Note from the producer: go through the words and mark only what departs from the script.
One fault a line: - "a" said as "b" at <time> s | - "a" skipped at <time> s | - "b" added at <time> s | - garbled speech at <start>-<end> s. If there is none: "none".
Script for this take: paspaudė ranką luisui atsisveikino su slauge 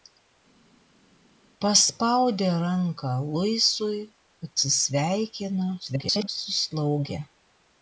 - garbled speech at 5.8-6.3 s